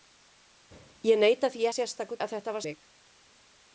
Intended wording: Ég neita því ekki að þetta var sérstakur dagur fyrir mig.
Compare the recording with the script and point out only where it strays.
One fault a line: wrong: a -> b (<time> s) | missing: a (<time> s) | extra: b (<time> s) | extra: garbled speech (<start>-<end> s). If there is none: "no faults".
wrong: ekki -> sérstakur (1.7 s)
missing: sérstakur dagur fyrir (2.7 s)